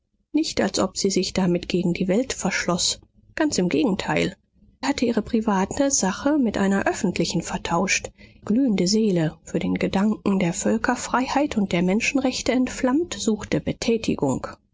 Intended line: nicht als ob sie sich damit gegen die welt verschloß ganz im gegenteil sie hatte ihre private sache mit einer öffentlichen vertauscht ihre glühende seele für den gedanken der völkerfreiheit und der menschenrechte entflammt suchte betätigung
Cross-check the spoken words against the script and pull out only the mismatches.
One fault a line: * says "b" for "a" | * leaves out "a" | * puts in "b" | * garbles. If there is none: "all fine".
* leaves out "sie"
* leaves out "ihre"